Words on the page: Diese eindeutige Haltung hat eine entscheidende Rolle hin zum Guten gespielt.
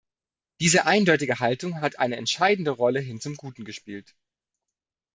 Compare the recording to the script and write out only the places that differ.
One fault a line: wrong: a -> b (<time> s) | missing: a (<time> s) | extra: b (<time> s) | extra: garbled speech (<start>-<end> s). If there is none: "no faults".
no faults